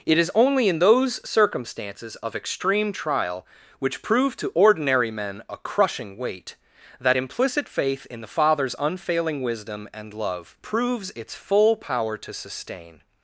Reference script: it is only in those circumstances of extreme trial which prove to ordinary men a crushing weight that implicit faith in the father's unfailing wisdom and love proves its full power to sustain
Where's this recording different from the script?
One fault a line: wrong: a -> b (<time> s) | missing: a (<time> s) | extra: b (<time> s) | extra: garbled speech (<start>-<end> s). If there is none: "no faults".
no faults